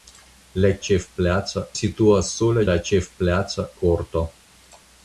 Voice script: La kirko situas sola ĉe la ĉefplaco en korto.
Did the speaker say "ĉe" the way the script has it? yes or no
no